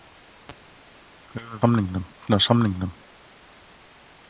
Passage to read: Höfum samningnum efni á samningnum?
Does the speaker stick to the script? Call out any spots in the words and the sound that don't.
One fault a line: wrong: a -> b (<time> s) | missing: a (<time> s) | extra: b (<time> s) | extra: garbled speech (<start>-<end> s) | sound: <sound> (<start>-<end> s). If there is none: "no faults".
no faults